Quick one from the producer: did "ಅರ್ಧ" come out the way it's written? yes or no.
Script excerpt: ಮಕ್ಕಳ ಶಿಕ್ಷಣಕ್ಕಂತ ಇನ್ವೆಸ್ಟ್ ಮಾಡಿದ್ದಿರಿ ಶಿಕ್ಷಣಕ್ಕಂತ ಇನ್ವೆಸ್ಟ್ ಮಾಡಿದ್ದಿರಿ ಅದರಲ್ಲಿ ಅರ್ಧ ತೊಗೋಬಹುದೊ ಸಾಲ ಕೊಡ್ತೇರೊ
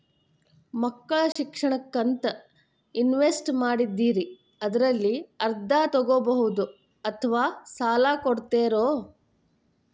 yes